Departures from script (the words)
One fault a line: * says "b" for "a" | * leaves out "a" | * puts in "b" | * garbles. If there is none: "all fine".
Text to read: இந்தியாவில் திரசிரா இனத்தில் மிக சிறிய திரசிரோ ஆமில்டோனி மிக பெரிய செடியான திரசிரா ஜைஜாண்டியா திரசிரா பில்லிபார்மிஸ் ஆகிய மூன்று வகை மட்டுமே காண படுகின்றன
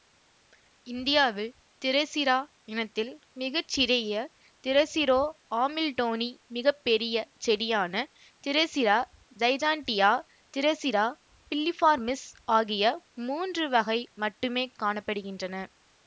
all fine